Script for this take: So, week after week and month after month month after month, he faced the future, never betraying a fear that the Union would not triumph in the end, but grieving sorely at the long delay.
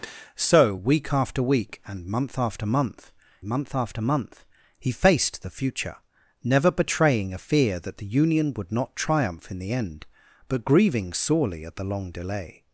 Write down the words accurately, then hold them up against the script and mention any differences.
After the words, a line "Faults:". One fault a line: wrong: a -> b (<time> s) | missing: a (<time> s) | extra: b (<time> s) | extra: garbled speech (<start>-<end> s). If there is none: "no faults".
So, week after week and month after month month after month, he faced the future, never betraying a fear that the Union would not triumph in the end, but grieving sorely at the long delay.
Faults:
no faults